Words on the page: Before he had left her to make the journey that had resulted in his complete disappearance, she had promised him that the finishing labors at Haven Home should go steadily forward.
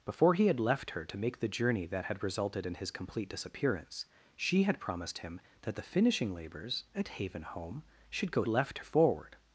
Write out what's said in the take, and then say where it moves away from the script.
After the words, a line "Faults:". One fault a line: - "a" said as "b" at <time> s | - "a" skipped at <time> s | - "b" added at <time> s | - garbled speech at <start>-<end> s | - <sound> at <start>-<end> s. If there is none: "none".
Before he had left her to make the journey that had resulted in his complete disappearance, she had promised him that the finishing labors at Haven Home should go left forward.
Faults:
- "steadily" said as "left" at 8.5 s